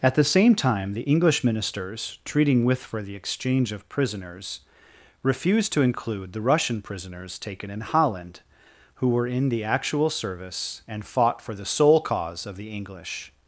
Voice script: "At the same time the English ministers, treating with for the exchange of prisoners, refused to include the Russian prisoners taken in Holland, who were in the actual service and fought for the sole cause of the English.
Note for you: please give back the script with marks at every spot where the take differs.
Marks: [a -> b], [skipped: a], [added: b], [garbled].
"At the same time the English ministers, treating with for the exchange of prisoners, refused to include the Russian prisoners taken in Holland, who were in the actual service and fought for the sole cause of the English.